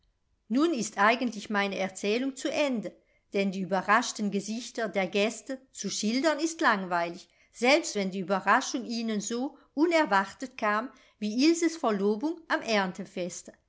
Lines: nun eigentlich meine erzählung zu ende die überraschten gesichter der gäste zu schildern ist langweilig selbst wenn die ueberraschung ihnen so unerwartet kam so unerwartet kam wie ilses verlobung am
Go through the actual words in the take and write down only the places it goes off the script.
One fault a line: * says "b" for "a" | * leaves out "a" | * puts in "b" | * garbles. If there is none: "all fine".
* puts in "ist"
* puts in "denn"
* leaves out "so unerwartet kam"